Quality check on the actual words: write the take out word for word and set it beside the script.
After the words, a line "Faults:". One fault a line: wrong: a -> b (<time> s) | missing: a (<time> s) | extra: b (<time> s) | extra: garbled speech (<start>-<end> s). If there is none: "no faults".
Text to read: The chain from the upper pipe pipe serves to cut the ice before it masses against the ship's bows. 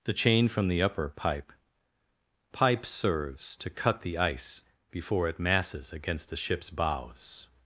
The chain from the upper pipe pipe serves to cut the ice before it masses against the ship's bows.
Faults:
no faults